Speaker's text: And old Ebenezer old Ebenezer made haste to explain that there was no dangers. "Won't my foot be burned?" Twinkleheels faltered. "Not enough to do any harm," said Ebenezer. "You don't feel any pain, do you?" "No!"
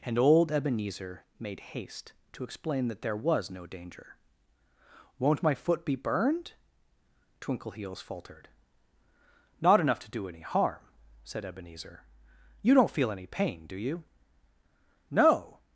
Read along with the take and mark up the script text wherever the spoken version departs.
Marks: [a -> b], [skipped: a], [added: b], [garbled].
And old Ebenezer [skipped: old Ebenezer] made haste to explain that there was no [dangers. -> danger] "Won't my foot be burned?" Twinkleheels faltered. "Not enough to do any harm," said Ebenezer. "You don't feel any pain, do you?" "No!"